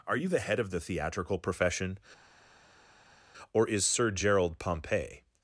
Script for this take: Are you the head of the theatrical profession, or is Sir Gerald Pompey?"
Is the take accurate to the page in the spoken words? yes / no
yes